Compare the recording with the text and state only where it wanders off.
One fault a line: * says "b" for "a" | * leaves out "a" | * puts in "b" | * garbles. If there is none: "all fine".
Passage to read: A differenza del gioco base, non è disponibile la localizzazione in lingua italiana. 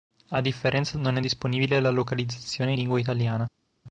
* leaves out "del gioco base"
* leaves out "in"